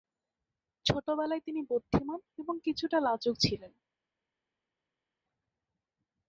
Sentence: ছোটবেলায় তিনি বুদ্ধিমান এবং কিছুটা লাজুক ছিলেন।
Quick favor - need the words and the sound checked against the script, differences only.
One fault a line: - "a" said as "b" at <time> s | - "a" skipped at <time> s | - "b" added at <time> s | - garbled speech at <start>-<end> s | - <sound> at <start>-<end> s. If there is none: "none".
none